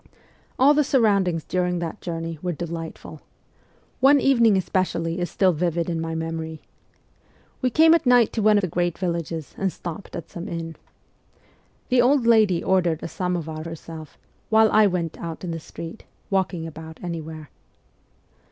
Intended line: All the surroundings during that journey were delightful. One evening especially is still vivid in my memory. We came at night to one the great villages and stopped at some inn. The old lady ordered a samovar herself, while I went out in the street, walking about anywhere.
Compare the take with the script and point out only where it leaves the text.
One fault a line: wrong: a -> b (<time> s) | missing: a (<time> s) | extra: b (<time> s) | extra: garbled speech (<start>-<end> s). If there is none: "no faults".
no faults